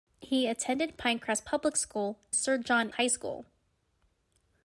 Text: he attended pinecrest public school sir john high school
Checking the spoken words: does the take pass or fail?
pass